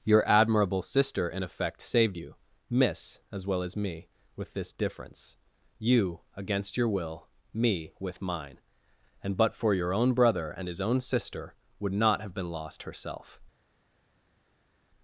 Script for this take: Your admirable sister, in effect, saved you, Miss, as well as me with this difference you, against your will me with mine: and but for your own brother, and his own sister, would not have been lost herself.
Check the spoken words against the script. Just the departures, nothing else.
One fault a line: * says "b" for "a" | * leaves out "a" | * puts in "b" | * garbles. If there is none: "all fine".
all fine